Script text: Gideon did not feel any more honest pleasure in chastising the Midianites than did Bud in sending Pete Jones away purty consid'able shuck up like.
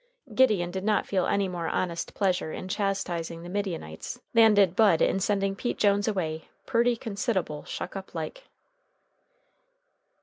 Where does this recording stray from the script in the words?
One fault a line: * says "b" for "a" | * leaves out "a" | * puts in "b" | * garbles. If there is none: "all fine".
all fine